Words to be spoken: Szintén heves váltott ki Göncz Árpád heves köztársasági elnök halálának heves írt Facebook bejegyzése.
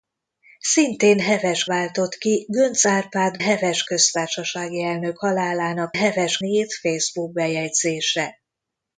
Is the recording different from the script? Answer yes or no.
no